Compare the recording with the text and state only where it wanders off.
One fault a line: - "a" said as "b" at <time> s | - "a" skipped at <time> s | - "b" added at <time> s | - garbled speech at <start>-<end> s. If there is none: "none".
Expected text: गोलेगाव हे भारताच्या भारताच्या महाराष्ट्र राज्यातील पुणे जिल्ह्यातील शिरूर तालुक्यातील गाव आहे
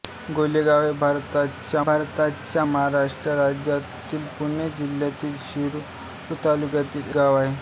none